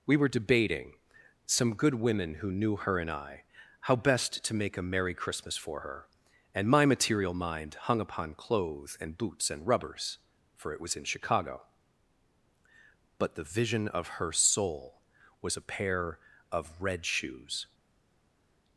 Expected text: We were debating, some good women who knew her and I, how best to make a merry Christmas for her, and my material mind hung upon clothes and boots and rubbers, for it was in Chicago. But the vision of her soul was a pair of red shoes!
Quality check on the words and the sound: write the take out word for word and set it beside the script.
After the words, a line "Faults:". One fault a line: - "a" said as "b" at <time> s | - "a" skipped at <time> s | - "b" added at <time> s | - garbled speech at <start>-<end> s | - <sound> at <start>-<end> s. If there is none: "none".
We were debating, some good women who knew her and I, how best to make a merry Christmas for her, and my material mind hung upon clothes and boots and rubbers, for it was in Chicago. But the vision of her soul was a pair of red shoes!
Faults:
none